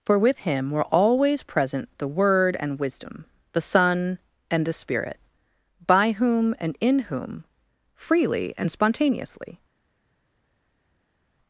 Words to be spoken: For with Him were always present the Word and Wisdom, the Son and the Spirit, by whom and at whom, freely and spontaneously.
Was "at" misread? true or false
true